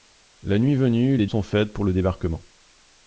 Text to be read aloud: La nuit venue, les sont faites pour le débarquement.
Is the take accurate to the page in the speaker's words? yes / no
yes